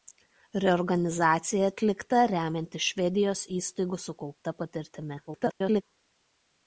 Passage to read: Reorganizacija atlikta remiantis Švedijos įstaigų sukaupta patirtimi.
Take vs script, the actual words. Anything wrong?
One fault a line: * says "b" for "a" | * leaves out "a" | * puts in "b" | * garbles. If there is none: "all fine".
* garbles